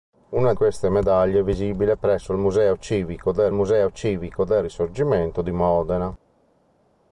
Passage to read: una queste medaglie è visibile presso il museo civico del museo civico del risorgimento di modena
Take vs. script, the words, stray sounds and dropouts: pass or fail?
pass